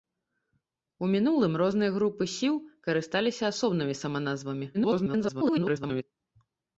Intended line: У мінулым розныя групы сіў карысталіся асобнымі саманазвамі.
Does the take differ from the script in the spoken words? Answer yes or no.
yes